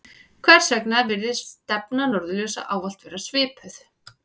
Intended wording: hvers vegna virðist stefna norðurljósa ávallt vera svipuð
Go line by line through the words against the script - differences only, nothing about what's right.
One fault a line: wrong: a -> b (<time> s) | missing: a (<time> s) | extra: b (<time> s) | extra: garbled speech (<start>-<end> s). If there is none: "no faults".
no faults